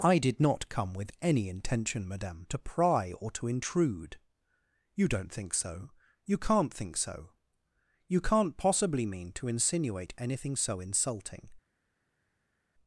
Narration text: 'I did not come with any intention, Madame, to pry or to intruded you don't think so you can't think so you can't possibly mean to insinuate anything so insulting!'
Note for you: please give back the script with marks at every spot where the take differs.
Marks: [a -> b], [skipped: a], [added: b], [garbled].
'I did not come with any intention, Madame, to pry or to [intruded -> intrude] you don't think so you can't think so you can't possibly mean to insinuate anything so insulting!'